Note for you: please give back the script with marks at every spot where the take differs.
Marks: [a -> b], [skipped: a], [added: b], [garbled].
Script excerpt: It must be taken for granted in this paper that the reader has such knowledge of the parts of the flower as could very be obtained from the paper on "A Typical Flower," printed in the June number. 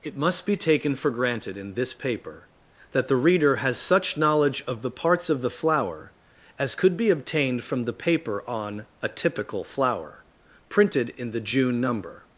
It must be taken for granted in this paper that the reader has such knowledge of the parts of the flower as could [skipped: very] be obtained from the paper on "A Typical Flower," printed in the June number.